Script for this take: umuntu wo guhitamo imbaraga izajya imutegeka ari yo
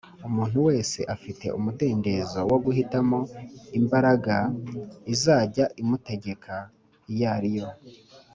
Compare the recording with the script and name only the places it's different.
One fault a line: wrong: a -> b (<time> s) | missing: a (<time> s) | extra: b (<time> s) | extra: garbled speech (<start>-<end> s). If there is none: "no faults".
extra: wese afite umudendezo (0.7 s)
extra: iyo (7.1 s)